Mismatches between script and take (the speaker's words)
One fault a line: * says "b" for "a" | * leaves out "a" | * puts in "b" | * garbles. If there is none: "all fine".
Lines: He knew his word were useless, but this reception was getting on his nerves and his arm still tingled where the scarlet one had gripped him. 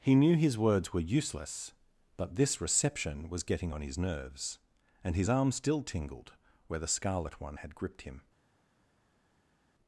* says "words" for "word"